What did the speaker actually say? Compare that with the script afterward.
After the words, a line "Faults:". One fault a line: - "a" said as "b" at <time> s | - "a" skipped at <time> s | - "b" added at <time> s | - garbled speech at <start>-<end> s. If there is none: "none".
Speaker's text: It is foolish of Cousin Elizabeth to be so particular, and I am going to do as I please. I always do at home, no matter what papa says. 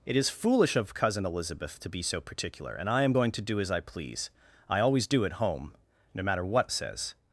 It is foolish of Cousin Elizabeth to be so particular, and I am going to do as I please. I always do at home, no matter what says.
Faults:
- "papa" skipped at 6.7 s